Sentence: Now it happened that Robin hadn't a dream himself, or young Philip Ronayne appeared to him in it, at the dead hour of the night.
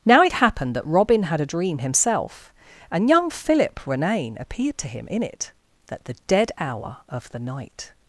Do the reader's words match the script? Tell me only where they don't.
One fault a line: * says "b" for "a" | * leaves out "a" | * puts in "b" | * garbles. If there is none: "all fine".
* says "had" for "hadn't"
* says "and" for "or"